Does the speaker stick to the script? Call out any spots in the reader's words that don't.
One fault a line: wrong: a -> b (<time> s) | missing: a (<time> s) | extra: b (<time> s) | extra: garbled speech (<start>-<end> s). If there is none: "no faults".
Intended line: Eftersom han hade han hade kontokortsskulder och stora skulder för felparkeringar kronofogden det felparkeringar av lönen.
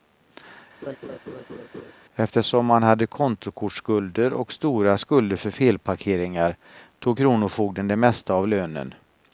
missing: han hade (3.1 s)
extra: tog (7.0 s)
wrong: felparkeringar -> mesta (8.0 s)